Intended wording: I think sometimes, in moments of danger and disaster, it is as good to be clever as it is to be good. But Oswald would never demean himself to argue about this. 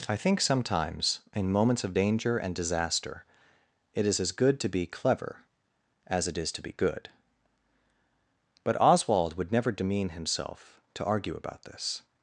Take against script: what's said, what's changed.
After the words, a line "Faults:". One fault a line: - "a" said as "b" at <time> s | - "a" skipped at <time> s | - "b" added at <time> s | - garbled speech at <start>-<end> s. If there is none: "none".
I think sometimes, in moments of danger and disaster, it is as good to be clever as it is to be good. But Oswald would never demean himself to argue about this.
Faults:
none